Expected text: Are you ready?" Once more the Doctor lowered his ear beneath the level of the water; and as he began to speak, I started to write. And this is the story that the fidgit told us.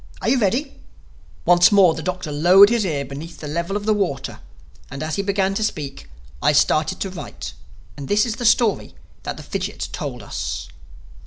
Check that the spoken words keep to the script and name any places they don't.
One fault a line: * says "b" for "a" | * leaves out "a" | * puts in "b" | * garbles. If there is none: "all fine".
all fine